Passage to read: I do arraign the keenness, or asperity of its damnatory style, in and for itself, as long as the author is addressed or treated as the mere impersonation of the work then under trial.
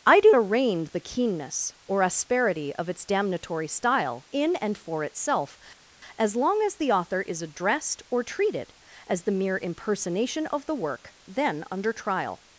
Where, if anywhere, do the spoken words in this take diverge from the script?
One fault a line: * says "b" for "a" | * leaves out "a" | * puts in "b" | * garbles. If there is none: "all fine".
all fine